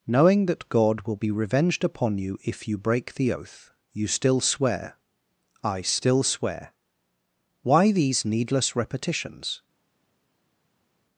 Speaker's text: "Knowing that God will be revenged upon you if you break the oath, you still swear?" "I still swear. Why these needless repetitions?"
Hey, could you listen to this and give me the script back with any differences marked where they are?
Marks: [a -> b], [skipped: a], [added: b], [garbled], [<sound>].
"Knowing that God will be revenged upon you if you break the oath, you still swear?" "I still swear. Why these needless repetitions?"